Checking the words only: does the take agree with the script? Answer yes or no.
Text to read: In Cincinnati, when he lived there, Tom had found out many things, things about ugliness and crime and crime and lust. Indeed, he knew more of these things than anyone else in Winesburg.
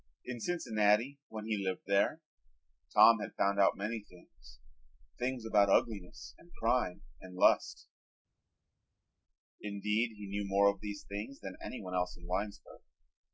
no